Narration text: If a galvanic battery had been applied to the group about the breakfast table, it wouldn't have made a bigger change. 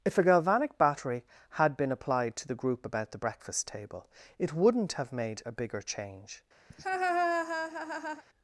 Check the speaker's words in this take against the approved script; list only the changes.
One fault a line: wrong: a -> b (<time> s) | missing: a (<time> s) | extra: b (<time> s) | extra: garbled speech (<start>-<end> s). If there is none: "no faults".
no faults